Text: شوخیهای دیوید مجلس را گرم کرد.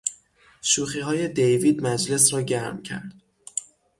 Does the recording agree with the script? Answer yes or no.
yes